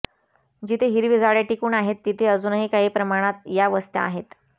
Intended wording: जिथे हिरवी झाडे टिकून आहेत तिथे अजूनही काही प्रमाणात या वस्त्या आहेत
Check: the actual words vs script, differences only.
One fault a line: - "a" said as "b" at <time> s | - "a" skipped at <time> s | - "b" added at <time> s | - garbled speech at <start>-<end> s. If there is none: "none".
none